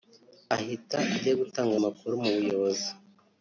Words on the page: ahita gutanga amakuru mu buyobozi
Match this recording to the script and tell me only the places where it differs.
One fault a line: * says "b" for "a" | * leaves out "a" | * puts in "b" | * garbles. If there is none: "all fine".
* puts in "ajya"